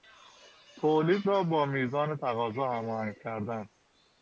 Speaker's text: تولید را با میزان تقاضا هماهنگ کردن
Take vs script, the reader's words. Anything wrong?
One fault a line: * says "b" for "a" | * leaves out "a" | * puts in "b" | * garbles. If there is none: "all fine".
all fine